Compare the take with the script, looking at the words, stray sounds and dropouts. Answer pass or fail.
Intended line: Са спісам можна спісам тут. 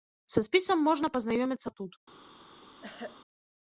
fail